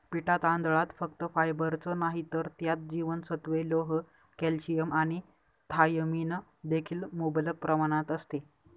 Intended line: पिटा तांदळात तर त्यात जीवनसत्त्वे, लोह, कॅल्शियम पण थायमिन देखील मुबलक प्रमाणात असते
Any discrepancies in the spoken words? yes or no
yes